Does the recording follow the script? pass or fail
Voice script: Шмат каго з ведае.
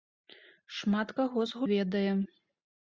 pass